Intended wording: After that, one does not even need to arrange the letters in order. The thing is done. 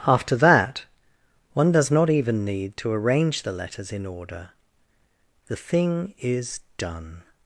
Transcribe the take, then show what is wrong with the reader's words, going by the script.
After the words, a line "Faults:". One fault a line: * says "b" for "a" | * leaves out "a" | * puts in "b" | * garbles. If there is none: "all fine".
After that, one does not even need to arrange the letters in order. The thing is done.
Faults:
all fine